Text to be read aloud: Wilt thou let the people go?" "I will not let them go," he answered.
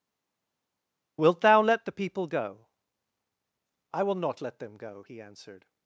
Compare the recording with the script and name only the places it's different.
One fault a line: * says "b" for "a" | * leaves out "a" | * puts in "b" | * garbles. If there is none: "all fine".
all fine